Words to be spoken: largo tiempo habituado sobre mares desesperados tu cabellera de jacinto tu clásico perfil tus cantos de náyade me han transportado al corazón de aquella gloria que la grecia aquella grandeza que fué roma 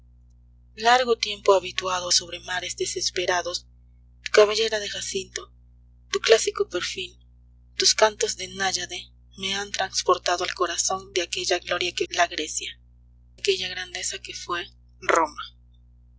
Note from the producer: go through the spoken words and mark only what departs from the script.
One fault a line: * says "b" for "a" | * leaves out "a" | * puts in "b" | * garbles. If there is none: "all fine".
all fine